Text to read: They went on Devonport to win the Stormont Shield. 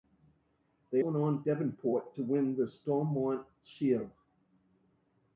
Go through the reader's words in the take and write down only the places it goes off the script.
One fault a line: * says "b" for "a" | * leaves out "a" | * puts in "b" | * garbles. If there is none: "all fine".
all fine